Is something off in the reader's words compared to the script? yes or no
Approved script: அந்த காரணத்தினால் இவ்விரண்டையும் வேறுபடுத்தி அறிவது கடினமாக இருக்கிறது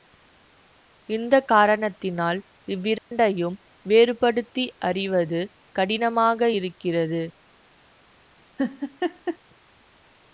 yes